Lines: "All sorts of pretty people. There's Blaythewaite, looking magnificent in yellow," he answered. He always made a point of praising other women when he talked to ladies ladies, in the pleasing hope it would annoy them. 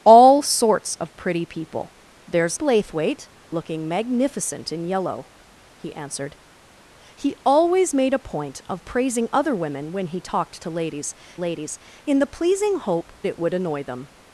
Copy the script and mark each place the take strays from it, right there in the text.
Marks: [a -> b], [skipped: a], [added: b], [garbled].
"All sorts of pretty people. There's Blaythewaite, looking magnificent in yellow," he answered. He always made a point of praising other women when he talked to ladies ladies, in the pleasing hope it would annoy them.